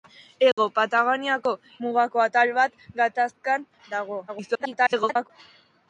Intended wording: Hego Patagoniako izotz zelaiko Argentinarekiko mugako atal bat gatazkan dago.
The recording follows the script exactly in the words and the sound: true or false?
false